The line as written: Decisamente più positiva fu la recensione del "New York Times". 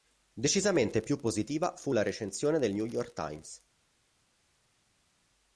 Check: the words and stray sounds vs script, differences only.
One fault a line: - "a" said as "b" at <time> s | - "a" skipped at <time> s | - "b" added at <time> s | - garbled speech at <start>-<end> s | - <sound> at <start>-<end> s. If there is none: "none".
none